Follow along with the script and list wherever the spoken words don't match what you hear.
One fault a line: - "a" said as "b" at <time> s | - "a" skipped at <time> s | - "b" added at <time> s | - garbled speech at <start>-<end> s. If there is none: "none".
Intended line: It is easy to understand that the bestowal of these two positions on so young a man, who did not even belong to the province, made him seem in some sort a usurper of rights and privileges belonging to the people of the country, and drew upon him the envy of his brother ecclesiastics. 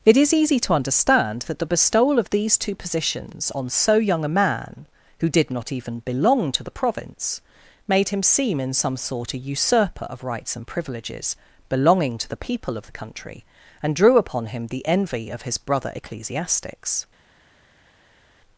none